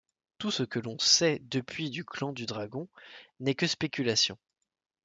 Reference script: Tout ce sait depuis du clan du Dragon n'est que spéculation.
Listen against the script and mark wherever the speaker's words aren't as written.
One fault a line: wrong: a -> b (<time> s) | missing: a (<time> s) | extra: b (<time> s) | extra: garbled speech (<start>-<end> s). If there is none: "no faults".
extra: que l'on (0.6 s)